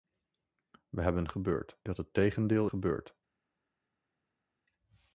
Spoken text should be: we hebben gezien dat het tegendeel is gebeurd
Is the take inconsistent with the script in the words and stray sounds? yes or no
yes